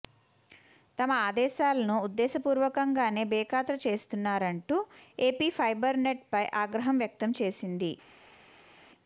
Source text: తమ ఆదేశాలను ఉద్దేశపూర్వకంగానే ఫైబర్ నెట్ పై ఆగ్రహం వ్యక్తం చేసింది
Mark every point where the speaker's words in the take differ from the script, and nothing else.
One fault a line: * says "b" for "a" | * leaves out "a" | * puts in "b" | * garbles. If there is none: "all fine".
* puts in "బేఖాతరు చేస్తున్నారంటూ ఏపీ"